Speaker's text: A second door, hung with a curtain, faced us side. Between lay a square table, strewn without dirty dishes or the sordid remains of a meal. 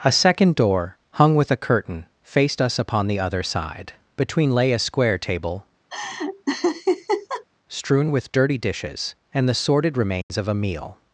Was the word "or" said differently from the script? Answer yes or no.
yes